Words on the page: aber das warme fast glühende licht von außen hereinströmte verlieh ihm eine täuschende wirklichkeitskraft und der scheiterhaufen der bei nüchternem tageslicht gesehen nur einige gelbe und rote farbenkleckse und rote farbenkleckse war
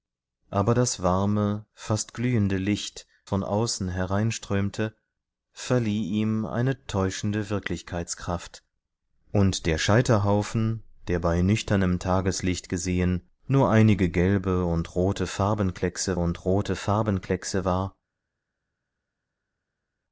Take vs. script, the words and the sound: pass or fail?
pass